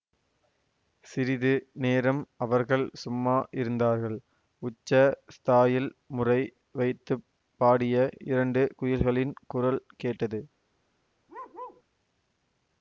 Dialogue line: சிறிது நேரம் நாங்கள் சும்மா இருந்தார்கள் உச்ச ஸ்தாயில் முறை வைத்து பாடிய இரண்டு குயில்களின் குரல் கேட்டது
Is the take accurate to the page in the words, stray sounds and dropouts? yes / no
no